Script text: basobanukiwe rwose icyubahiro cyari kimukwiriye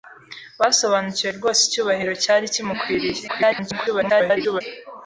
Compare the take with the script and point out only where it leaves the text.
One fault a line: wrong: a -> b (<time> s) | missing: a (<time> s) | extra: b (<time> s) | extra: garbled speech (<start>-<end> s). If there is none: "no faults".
extra: garbled speech (3.3-4.6 s)